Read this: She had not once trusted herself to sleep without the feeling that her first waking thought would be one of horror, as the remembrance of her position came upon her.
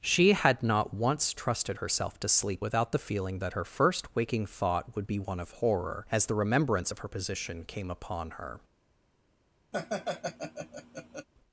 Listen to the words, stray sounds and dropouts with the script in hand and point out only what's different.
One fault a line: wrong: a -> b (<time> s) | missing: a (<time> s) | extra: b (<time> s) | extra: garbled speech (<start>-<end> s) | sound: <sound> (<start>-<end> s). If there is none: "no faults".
sound: laugh (9.7-11.3 s)